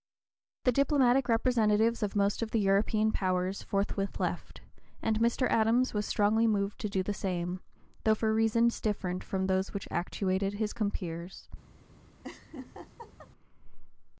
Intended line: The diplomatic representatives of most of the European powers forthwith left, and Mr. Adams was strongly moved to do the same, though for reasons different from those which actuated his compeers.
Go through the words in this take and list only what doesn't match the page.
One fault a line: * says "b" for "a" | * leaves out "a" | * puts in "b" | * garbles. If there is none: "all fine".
all fine